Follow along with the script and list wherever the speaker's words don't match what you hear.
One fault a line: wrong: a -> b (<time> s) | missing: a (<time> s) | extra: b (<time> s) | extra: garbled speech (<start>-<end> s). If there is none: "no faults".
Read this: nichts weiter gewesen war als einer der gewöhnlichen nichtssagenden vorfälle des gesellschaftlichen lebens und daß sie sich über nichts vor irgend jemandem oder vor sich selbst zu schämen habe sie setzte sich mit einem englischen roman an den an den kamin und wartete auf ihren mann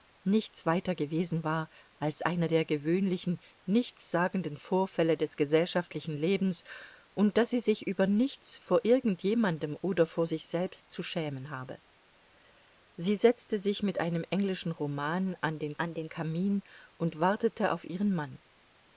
no faults